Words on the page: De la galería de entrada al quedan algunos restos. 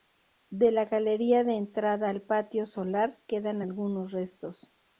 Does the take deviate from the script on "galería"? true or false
false